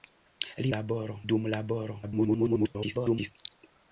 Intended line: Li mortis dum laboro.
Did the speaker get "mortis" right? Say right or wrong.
wrong